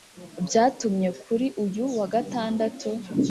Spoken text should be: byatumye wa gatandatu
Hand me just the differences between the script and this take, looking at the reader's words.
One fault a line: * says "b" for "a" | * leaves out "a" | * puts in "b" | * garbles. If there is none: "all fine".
* puts in "kuri uyu"